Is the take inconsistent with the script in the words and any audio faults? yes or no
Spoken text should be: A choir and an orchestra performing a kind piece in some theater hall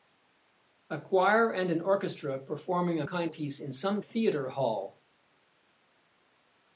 no